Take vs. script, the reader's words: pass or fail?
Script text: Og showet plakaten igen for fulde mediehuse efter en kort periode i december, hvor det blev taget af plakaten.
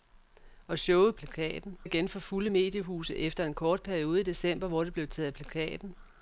pass